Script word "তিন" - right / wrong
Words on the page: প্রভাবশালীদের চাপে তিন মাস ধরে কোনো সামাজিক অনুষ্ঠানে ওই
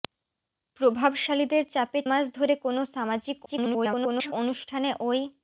wrong